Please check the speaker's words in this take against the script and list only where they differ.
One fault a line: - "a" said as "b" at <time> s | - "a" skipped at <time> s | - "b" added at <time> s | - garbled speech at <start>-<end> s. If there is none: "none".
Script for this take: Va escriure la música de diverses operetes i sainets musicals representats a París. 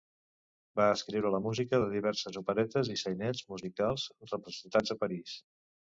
none